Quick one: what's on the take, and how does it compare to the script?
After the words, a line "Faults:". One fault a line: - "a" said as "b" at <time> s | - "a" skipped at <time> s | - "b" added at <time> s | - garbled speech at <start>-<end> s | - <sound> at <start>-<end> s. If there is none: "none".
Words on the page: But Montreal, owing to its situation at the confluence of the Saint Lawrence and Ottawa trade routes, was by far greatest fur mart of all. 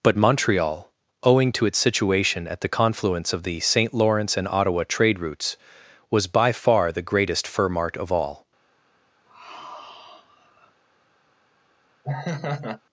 But Montreal, owing to its situation at the confluence of the Saint Lawrence and Ottawa trade routes, was by far the greatest fur mart of all.
Faults:
- "the" added at 6.9 s
- sigh at 9.3-10.8 s
- laugh at 12.0-12.8 s